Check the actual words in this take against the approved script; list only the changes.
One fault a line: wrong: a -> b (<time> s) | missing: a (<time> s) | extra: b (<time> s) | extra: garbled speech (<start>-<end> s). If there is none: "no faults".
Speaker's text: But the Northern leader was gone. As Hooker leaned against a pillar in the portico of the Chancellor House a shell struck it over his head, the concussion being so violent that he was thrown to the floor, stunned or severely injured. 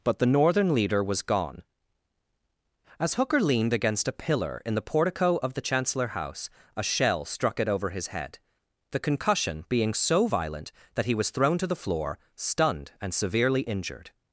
wrong: or -> and (13.0 s)